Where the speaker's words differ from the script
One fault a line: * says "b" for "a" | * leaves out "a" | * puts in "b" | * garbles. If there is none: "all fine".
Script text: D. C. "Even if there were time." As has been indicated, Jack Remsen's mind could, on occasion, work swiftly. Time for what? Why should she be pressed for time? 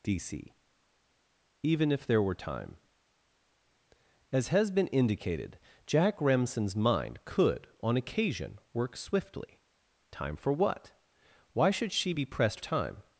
* leaves out "for"